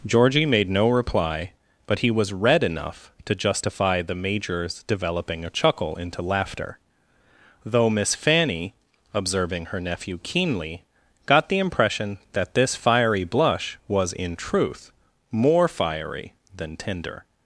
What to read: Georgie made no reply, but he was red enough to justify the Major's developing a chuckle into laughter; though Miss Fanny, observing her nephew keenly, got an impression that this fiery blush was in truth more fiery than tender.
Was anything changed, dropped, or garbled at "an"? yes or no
yes